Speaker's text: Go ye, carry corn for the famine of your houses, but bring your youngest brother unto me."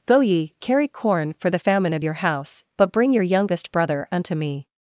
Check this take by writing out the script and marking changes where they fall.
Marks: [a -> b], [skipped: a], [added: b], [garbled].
Go ye, carry corn for the famine of your [houses, -> house] but bring your youngest brother unto me."